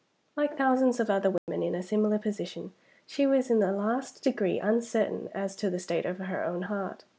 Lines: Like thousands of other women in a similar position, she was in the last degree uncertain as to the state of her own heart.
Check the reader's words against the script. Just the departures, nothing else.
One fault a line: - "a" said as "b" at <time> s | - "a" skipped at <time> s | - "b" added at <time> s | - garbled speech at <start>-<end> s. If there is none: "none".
none